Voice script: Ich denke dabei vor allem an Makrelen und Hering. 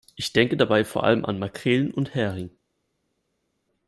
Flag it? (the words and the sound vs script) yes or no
no